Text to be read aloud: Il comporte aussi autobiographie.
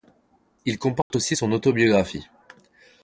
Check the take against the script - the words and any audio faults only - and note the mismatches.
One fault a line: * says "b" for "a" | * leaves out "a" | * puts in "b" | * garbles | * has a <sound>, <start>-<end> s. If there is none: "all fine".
* has a dropout, 1.0-1.1 s
* puts in "son"